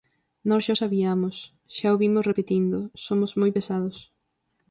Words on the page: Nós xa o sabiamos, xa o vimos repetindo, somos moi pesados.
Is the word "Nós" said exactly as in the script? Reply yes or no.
yes